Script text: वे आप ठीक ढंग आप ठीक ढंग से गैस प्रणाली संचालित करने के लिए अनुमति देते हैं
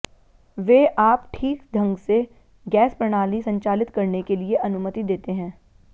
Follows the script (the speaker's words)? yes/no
no